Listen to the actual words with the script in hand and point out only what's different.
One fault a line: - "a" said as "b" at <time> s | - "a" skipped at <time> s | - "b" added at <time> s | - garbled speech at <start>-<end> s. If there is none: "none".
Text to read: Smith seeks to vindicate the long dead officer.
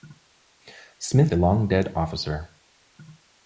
- "seeks to vindicate" skipped at 1.3 s